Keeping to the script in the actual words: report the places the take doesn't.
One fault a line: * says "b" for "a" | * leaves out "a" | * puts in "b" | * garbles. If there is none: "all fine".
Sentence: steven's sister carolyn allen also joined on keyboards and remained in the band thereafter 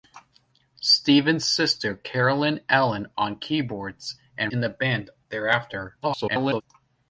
* leaves out "also joined"
* leaves out "remained"
* garbles